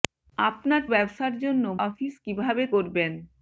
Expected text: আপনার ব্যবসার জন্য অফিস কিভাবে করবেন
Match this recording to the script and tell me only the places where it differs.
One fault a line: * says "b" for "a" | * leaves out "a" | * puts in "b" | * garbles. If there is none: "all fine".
all fine